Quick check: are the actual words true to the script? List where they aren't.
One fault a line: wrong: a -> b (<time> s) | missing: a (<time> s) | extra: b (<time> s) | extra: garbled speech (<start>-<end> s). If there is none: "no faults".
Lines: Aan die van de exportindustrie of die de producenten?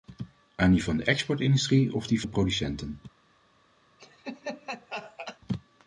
no faults